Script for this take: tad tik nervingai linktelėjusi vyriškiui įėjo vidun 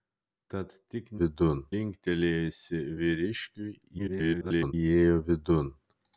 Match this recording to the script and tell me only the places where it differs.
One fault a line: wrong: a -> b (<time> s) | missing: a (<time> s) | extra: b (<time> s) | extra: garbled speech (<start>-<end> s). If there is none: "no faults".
wrong: nervingai -> vidun (1.2 s)
extra: garbled speech (4.0-4.7 s)